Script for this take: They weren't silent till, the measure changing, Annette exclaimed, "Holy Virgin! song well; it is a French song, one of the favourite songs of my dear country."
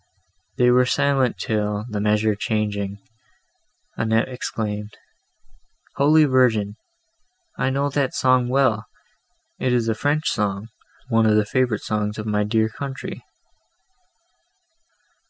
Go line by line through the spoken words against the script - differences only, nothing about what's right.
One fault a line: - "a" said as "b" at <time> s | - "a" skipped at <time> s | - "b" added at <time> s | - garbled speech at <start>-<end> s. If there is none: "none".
- "weren't" said as "were" at 0.7 s
- "I know that" added at 7.6 s